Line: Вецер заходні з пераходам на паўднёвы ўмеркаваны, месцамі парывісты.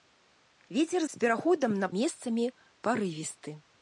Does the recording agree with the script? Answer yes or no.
no